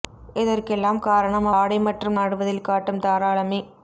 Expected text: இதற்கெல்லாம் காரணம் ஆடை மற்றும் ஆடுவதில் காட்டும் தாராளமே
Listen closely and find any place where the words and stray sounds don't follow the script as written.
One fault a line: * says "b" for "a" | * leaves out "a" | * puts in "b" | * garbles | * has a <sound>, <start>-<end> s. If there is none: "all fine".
all fine